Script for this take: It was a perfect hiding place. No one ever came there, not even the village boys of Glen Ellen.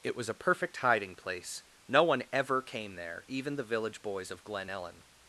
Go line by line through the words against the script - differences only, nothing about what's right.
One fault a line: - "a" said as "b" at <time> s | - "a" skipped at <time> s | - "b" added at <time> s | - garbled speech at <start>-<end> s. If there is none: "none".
- "not" skipped at 3.2 s